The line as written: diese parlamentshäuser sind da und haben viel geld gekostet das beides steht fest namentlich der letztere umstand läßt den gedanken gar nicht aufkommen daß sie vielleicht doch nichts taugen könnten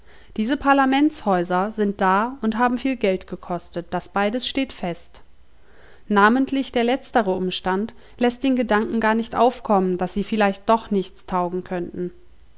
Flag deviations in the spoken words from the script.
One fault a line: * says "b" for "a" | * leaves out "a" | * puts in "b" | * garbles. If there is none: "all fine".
all fine